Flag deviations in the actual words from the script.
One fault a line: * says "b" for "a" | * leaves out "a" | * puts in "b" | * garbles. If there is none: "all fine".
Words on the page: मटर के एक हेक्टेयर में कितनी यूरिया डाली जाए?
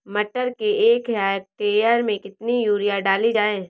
all fine